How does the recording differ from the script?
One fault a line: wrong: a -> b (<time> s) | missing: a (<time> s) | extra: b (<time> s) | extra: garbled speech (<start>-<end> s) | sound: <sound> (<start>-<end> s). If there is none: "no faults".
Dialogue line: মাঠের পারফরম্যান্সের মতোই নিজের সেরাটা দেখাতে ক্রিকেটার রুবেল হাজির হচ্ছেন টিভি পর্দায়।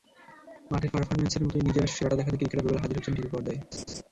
sound: laugh (3.7-4.0 s)